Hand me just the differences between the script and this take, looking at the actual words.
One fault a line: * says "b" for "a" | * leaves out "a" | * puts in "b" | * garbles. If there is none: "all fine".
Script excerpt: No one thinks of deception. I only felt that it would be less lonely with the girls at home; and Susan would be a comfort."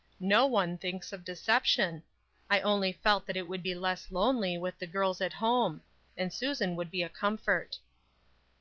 all fine